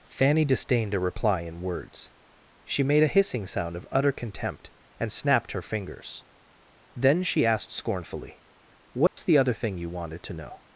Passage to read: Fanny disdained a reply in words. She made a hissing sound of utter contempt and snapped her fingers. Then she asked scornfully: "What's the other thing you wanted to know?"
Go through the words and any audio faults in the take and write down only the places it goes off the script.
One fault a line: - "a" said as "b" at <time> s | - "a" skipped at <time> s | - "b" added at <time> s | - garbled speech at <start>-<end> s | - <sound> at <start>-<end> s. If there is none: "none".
- dropout at 9.1-9.2 s